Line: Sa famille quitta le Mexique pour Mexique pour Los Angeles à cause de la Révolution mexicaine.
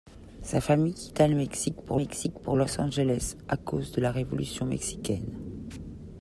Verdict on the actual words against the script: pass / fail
pass